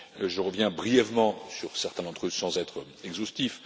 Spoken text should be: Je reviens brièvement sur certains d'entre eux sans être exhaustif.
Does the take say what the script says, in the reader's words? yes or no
yes